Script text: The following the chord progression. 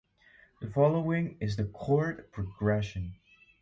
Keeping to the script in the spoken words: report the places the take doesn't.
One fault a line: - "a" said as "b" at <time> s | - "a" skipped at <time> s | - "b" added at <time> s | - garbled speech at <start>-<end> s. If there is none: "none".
- "is" added at 1.4 s